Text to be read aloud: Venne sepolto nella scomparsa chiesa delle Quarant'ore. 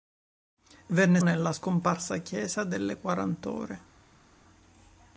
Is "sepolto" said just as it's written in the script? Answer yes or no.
no